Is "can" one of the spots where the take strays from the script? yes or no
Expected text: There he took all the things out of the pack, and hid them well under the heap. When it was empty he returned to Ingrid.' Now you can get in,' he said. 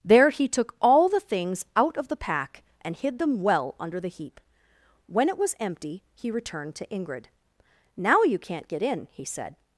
yes